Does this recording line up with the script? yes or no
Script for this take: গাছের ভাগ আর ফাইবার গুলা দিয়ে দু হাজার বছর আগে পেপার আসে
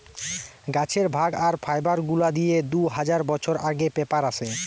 yes